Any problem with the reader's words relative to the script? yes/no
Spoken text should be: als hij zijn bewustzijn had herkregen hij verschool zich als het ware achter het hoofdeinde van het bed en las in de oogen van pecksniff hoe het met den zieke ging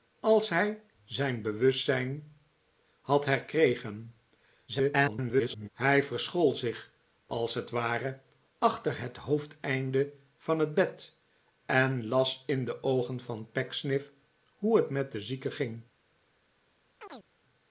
yes